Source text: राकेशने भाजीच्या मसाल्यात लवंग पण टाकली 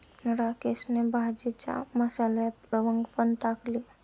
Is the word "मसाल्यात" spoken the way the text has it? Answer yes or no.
yes